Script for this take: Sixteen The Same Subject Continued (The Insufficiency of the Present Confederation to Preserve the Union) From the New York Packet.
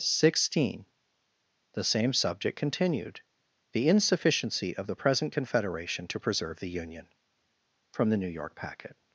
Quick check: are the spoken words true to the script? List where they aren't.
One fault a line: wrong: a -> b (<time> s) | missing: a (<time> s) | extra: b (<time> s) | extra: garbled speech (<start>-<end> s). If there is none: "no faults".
no faults